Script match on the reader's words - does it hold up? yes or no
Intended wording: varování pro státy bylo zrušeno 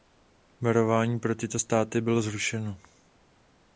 no